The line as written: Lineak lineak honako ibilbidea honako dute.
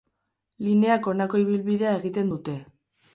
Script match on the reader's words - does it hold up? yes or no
no